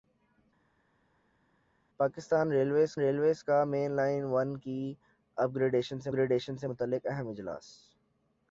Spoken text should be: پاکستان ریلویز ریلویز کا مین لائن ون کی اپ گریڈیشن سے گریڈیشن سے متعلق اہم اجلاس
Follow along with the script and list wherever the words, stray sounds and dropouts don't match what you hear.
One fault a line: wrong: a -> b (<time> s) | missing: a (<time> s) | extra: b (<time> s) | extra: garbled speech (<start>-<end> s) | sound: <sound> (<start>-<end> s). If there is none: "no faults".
no faults